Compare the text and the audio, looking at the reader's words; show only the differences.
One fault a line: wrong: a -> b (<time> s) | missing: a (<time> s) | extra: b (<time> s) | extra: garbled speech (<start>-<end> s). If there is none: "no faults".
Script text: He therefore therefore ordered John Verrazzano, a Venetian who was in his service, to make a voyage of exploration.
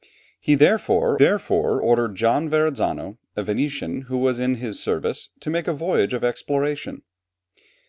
no faults